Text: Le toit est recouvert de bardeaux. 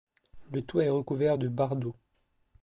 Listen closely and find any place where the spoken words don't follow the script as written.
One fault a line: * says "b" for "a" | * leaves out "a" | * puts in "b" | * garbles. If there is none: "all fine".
all fine